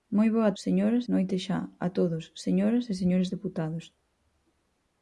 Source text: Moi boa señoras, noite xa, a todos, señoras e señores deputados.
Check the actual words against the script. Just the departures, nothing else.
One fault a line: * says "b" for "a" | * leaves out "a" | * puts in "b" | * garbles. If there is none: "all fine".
all fine